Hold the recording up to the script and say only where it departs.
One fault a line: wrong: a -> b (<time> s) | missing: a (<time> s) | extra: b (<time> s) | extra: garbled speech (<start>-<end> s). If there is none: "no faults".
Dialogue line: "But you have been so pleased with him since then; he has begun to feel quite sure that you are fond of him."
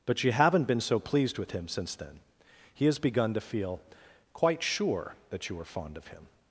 wrong: have -> haven't (0.3 s)